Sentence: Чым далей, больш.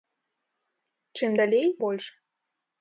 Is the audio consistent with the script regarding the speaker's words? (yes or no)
yes